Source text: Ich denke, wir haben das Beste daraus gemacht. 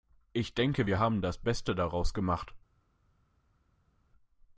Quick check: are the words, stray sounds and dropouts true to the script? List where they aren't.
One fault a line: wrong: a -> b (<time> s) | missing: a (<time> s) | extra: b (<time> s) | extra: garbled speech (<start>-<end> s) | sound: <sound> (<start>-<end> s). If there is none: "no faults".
no faults